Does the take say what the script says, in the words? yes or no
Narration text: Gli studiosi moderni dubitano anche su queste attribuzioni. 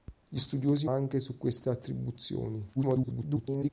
no